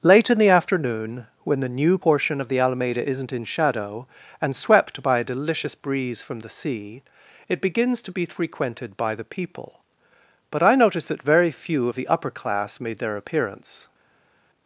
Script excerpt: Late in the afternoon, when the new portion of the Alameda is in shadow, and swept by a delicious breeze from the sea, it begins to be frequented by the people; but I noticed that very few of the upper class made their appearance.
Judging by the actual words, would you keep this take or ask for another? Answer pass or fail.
fail